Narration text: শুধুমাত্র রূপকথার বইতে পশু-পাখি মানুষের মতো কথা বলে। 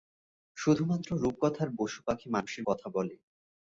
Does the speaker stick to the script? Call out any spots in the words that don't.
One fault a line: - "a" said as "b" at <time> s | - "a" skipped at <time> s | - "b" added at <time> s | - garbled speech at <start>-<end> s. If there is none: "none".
- "বইতে" skipped at 1.7 s
- "মতো" skipped at 2.6 s